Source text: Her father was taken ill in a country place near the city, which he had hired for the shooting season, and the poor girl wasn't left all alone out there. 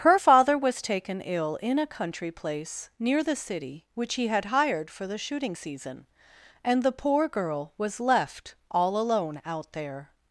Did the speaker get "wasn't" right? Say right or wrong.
wrong